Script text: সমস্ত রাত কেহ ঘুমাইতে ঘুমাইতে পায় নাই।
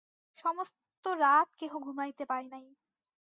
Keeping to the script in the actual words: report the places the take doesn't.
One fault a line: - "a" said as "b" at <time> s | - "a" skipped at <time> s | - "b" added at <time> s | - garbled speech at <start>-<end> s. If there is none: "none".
- "ঘুমাইতে" skipped at 2.2 s